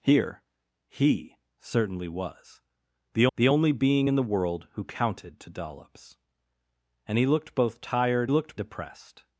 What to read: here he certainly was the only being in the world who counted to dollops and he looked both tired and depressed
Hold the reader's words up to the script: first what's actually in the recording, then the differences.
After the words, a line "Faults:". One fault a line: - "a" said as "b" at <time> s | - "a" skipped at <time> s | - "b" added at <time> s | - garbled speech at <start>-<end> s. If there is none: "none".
here he certainly was the the only being in the world who counted to dollops and he looked both tired looked depressed
Faults:
- "the" added at 3.4 s
- "and" said as "looked" at 8.3 s